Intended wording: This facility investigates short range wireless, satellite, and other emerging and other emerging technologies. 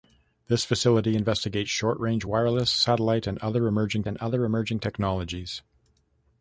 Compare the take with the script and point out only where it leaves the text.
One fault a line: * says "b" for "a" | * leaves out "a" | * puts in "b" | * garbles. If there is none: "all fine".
all fine